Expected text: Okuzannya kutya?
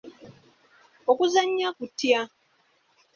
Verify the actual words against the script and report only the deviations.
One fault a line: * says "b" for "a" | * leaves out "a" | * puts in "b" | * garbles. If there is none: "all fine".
all fine